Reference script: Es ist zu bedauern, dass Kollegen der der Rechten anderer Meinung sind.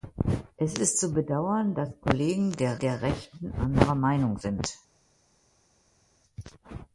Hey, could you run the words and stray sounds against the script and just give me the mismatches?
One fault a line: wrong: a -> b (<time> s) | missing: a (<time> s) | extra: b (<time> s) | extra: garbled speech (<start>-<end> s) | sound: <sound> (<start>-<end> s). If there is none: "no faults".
no faults